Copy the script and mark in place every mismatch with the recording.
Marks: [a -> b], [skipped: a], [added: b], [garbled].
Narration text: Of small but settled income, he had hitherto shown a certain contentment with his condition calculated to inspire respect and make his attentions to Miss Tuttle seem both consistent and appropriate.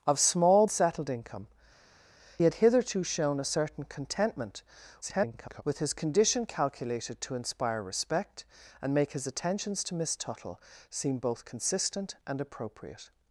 Of small [skipped: but] settled income, [skipped: he] had hitherto shown a certain contentment [garbled] with his condition calculated to inspire respect and make his attentions to Miss Tuttle seem both consistent and appropriate.